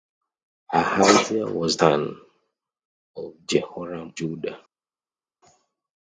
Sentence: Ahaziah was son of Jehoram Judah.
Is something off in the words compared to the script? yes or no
no